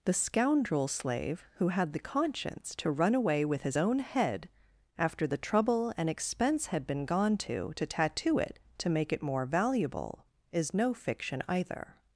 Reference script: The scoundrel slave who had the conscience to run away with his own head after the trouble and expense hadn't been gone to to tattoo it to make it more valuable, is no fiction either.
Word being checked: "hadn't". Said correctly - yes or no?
no